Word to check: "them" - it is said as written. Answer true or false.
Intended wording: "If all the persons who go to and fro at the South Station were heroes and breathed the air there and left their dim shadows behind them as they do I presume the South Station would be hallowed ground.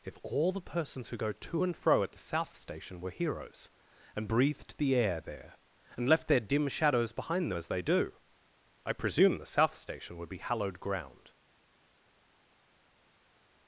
false